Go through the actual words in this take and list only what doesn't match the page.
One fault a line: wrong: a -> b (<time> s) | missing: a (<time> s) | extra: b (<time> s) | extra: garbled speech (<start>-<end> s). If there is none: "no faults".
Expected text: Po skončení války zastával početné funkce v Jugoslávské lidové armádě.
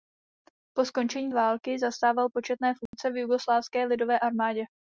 no faults